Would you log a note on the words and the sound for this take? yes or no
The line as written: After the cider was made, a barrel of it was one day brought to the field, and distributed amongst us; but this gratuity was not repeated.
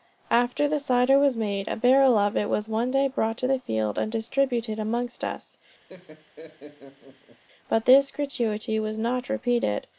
yes